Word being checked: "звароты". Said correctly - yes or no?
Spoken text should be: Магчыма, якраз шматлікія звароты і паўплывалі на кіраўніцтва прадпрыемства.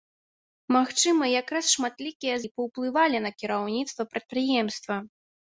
no